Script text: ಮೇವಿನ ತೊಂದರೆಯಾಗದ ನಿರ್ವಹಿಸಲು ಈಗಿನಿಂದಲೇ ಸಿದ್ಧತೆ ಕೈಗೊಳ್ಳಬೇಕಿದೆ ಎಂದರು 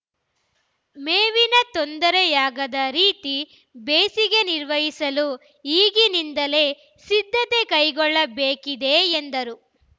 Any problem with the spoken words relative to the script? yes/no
yes